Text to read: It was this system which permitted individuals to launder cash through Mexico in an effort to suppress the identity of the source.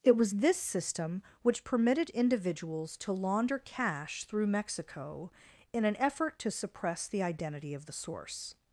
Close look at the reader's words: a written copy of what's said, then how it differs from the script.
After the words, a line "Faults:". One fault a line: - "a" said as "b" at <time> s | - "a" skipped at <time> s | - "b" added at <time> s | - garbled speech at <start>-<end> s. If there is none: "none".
It was this system which permitted individuals to launder cash through Mexico in an effort to suppress the identity of the source.
Faults:
none